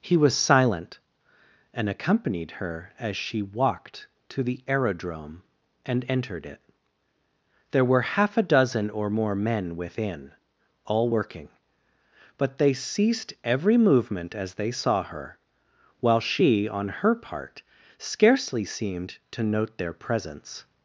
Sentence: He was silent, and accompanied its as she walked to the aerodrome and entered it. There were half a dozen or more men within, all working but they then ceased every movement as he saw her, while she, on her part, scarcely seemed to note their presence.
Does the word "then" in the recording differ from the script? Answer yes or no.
yes